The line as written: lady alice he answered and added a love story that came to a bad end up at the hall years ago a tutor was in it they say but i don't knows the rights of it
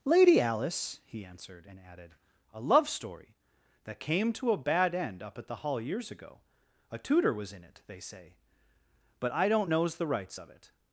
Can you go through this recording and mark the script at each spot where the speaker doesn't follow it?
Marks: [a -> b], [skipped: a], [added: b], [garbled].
lady alice he answered and added a love story that came to a bad end up at the hall years ago a tutor was in it they say but i don't knows the rights of it